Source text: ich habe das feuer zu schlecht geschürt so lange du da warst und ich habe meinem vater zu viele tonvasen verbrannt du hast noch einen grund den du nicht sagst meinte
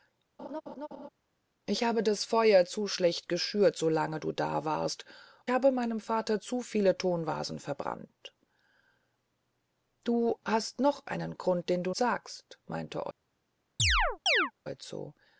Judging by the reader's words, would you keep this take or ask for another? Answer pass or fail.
fail